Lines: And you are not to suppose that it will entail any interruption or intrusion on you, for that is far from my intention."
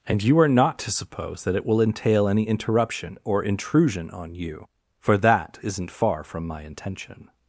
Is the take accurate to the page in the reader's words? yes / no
no